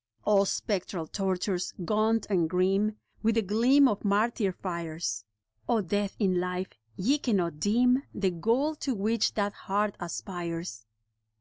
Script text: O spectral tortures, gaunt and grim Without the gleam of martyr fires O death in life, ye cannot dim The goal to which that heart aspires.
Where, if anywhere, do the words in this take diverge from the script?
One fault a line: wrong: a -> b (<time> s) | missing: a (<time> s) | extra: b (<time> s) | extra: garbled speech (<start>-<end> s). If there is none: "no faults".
wrong: Without -> With (3.2 s)